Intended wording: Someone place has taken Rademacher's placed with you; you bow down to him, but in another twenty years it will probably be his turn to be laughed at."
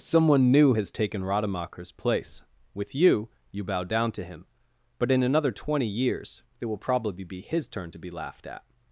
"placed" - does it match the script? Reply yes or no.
no